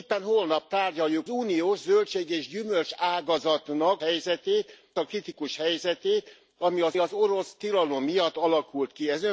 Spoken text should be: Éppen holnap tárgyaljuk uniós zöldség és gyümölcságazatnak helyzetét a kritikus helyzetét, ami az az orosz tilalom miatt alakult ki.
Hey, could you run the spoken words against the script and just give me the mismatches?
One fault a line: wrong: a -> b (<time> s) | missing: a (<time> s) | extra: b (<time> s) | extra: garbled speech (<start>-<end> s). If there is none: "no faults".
no faults